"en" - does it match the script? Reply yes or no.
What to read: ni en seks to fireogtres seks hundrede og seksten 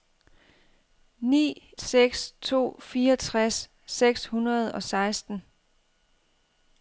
no